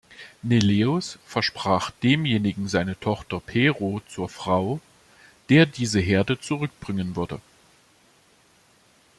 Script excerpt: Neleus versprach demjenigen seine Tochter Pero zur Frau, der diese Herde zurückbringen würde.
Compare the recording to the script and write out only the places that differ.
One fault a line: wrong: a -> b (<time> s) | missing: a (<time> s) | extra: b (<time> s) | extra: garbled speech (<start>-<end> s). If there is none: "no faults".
no faults